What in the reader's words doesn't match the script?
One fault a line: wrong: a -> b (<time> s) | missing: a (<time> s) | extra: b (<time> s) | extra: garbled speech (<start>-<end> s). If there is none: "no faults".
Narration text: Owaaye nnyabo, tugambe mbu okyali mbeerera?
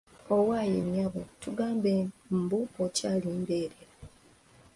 no faults